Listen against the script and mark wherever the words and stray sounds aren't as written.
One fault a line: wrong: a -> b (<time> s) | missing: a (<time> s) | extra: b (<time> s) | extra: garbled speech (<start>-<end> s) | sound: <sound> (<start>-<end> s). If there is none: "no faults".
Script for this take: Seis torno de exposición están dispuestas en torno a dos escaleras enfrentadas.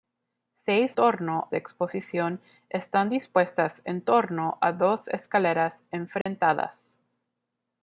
sound: dropout (6.2-6.3 s)